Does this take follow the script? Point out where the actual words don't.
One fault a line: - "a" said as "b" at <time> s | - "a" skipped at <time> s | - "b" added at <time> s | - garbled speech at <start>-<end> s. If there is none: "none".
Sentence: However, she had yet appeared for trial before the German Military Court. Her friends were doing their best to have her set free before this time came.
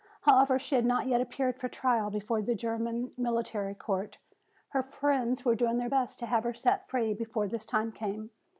- "not" added at 0.8 s